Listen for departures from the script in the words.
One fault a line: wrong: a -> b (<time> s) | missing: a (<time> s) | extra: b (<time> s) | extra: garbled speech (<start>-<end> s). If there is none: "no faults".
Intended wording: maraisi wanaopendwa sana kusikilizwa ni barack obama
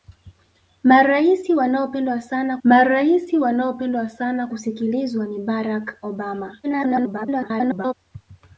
extra: maraisi wanaopendwa sana (2.6 s)
extra: garbled speech (6.6-7.9 s)